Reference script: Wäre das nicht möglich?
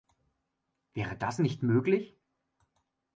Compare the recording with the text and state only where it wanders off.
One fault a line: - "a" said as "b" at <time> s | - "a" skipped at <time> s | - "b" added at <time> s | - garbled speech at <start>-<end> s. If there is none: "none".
none